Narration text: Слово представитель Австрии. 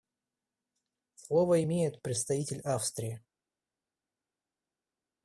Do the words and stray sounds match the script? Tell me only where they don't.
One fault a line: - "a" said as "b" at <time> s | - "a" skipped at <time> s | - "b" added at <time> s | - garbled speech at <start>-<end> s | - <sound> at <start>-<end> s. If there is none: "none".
- "имеет" added at 1.6 s